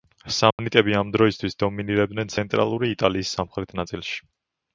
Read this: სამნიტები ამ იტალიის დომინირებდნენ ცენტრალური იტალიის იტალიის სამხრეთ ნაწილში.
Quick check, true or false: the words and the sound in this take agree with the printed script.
false